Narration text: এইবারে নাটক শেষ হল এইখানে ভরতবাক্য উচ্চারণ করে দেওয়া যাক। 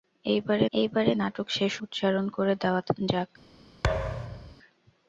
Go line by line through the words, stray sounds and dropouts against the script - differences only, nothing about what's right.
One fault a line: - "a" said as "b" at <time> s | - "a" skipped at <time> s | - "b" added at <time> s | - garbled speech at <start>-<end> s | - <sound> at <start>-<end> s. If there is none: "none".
- "এইবারে" added at 0.7 s
- "হল এইখানে ভরতবাক্য" skipped at 1.7 s
- thud at 3.8-4.6 s